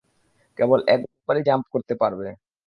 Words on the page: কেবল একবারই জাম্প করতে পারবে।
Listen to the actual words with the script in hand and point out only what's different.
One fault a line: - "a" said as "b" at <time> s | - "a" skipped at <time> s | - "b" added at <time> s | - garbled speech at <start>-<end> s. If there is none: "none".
none